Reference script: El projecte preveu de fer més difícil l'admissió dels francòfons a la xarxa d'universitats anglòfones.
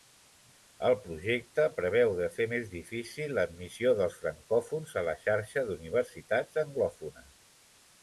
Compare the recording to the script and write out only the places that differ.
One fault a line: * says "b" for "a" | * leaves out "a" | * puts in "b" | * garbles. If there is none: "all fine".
all fine